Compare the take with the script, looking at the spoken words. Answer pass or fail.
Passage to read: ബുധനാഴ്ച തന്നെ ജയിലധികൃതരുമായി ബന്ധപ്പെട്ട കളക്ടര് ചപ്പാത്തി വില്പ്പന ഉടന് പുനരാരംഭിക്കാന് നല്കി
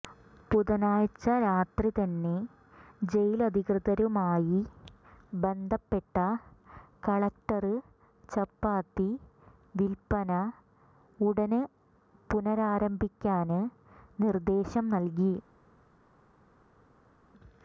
fail